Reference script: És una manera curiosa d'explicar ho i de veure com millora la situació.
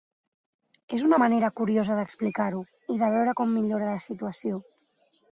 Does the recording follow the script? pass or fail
pass